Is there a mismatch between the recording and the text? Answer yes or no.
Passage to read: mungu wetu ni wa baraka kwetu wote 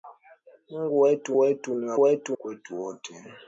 yes